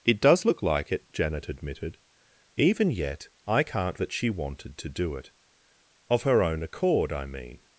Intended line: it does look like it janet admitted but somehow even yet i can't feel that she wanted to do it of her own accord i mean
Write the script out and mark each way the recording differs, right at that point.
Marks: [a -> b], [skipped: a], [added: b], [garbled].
it does look like it janet admitted [skipped: but somehow] even yet i can't [skipped: feel] that she wanted to do it of her own accord i mean